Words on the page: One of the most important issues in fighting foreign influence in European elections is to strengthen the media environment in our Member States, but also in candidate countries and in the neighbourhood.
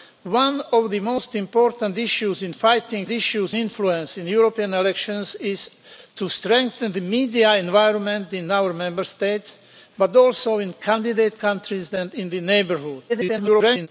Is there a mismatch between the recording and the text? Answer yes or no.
yes